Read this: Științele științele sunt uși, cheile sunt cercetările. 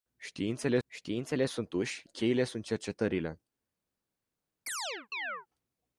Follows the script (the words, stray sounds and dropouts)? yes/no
no